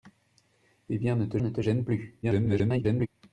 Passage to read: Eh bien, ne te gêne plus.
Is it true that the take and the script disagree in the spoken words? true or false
true